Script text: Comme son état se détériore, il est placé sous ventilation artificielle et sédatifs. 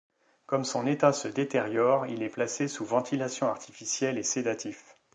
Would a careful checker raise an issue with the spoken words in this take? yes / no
no